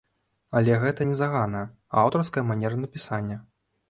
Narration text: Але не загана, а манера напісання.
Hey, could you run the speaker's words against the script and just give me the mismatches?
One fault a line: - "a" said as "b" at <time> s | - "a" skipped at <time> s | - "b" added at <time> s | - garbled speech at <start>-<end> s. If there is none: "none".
- "гэта" added at 0.8 s
- "аўтарская" added at 2.1 s